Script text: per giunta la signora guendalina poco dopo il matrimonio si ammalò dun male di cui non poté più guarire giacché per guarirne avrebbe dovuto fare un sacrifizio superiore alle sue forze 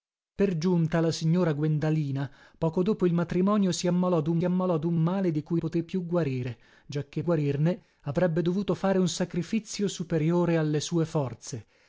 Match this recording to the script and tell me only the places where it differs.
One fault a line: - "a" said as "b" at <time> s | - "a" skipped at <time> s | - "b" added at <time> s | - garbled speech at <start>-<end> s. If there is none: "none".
- "ammalò dun" added at 4.4 s
- "non" skipped at 5.6 s
- "per" skipped at 7.2 s